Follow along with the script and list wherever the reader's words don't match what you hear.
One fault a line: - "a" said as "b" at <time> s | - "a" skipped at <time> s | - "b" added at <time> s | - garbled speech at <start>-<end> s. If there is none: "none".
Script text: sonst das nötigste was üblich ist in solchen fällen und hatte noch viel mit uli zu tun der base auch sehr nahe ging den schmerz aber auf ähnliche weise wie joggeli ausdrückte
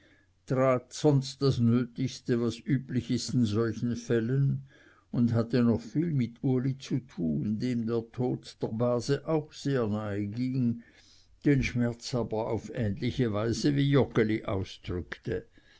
- "dem der tod" added at 7.6 s